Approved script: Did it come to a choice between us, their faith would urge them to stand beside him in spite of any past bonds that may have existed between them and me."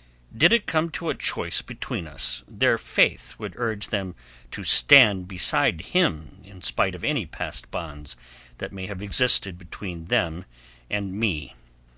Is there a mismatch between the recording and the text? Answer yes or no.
no